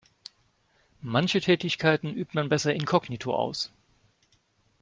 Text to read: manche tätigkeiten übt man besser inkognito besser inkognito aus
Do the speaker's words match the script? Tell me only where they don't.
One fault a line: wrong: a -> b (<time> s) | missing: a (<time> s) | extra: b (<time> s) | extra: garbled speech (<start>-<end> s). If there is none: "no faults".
missing: besser inkognito (3.3 s)